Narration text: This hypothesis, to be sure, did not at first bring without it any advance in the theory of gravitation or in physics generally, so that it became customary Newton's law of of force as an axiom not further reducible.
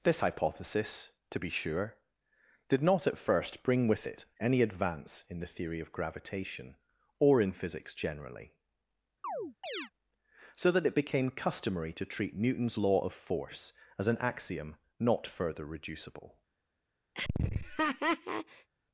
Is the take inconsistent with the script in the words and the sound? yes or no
yes